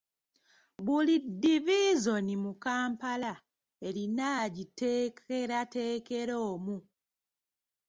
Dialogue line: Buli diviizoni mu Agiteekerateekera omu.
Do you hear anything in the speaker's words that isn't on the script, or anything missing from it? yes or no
yes